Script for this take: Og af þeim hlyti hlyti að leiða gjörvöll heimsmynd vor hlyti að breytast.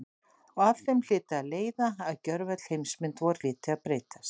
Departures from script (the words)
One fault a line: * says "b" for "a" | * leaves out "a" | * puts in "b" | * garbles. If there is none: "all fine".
* leaves out "hlyti"
* puts in "að"